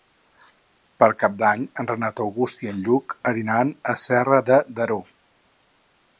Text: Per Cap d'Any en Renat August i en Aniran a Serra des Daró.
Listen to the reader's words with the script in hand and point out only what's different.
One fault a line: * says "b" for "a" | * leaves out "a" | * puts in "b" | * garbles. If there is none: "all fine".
* puts in "Lluc"
* says "de" for "des"